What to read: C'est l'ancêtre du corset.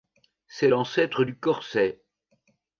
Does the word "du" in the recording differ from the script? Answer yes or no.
no